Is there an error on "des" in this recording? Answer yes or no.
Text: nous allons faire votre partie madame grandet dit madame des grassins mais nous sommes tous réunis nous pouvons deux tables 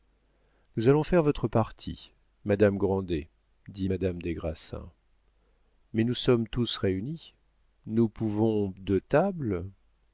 no